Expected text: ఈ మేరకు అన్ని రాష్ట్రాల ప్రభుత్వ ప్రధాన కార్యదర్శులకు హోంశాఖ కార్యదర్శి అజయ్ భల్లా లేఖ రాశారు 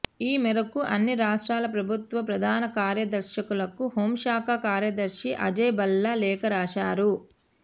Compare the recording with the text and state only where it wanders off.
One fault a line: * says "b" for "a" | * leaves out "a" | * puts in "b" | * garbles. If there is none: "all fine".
all fine